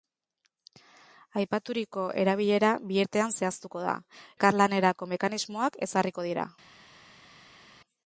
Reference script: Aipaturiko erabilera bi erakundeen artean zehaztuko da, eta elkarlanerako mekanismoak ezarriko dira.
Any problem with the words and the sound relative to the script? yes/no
yes